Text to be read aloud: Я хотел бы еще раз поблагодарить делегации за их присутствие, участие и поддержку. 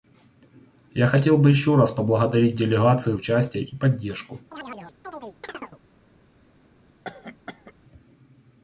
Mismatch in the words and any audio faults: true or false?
true